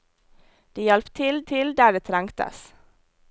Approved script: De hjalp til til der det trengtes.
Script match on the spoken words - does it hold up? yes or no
yes